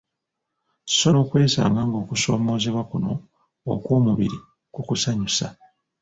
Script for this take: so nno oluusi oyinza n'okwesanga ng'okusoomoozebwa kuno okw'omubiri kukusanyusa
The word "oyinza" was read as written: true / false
false